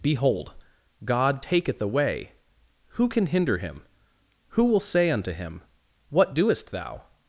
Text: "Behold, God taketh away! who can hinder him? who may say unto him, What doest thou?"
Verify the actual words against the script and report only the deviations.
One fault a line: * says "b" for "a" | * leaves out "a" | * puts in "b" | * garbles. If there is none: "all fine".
* says "will" for "may"